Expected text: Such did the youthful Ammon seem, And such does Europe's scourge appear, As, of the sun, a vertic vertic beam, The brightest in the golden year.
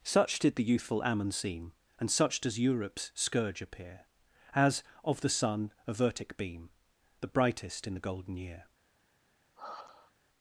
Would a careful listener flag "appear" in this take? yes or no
no